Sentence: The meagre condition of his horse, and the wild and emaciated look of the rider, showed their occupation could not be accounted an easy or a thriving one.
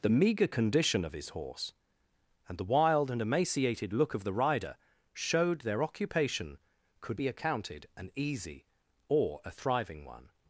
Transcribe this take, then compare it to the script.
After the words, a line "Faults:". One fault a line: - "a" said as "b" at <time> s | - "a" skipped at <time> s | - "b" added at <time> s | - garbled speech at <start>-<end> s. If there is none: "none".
The meagre condition of his horse, and the wild and emaciated look of the rider, showed their occupation could be accounted an easy or a thriving one.
Faults:
- "not" skipped at 7.2 s